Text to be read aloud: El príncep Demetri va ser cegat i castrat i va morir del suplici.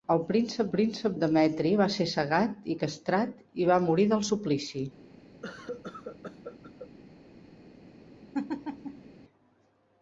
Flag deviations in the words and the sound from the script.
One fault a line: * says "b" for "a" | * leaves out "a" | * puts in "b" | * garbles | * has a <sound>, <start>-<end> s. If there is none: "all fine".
* puts in "príncep"
* has a cough, 5.4-6.9 s
* has a laugh, 8.3-9.1 s